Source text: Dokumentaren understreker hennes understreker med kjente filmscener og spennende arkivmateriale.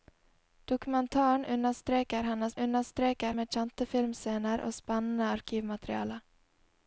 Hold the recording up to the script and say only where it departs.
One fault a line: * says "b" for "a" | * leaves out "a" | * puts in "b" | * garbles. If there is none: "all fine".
all fine